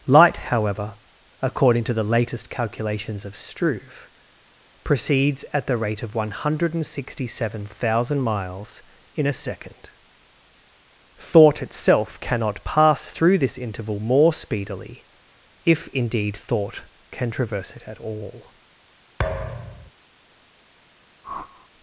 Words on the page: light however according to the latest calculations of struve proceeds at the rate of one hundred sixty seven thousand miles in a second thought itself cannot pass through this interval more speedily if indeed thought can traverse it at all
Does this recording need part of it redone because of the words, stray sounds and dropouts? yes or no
yes